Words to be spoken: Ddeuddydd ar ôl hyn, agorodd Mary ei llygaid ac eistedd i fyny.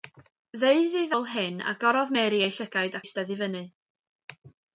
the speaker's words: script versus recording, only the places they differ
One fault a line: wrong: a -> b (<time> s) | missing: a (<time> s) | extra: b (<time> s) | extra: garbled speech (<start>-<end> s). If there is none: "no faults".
missing: ar (1.1 s)
missing: ac (3.0 s)